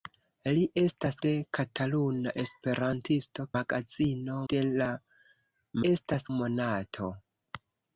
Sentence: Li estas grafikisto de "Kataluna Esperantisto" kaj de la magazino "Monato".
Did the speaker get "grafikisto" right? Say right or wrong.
wrong